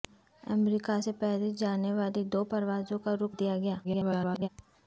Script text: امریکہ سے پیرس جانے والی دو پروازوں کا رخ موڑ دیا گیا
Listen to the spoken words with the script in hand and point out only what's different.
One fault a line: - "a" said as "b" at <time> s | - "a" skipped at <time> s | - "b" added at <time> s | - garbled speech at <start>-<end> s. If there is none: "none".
- "موڑ" skipped at 3.3 s
- garbled speech at 3.8-4.5 s